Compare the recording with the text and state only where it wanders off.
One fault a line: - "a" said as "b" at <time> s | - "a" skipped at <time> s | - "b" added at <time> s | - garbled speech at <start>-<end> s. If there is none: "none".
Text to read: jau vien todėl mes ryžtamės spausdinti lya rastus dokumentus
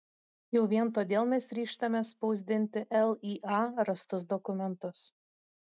none